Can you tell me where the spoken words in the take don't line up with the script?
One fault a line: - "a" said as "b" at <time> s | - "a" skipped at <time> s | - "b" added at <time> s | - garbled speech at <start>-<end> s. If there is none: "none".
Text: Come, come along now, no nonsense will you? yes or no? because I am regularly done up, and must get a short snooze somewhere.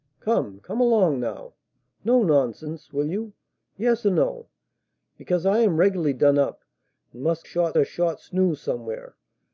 - "get" said as "short" at 7.4 s